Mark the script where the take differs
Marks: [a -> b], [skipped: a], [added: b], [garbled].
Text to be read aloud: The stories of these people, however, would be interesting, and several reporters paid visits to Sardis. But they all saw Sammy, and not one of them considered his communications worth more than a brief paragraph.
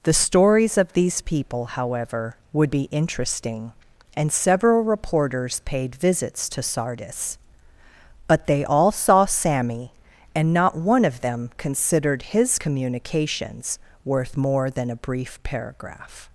The stories of these people, however, would be interesting, and several reporters paid visits to Sardis. But they all saw Sammy, and not one of them considered his communications worth more than a brief paragraph.